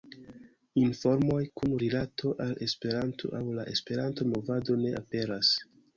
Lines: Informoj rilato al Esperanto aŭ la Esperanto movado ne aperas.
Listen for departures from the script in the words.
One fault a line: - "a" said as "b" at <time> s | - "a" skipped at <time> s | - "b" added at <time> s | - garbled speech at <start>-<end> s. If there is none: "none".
- "kun" added at 1.6 s